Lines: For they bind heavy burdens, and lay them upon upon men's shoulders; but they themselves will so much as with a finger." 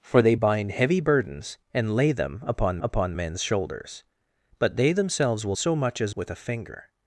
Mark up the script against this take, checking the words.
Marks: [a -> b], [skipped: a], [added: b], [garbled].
For they bind heavy burdens, and lay them upon upon men's shoulders; but they themselves will so much as with a finger."